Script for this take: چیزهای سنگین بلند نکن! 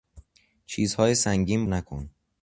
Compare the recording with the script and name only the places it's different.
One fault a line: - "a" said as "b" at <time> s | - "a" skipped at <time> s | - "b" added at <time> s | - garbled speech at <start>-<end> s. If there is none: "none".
- "بلند" skipped at 1.6 s